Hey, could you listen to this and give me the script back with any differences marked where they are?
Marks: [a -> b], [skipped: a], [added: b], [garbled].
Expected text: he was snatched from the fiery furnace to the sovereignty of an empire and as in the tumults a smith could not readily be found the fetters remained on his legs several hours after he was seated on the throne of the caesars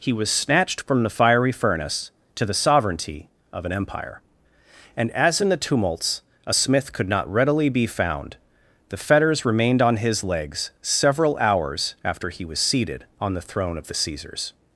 he was snatched from the fiery furnace to the sovereignty of an empire and as in the tumults a smith could not readily be found the fetters remained on his legs several hours after he was seated on the throne of the caesars